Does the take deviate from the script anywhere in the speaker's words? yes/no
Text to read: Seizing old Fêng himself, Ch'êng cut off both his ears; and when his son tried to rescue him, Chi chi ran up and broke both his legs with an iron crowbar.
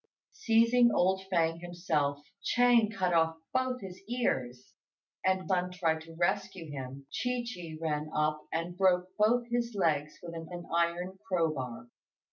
yes